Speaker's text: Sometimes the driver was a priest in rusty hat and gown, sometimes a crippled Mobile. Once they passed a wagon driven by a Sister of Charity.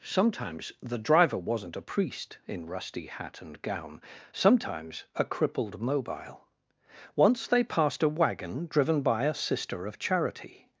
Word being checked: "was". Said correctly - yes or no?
no